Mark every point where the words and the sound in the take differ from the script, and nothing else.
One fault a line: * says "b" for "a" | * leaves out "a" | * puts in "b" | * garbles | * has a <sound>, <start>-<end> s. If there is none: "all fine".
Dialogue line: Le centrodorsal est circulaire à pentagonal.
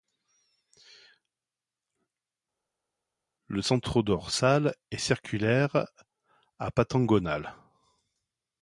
all fine